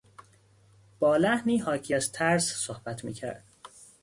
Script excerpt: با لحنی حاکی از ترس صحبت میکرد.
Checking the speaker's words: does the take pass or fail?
pass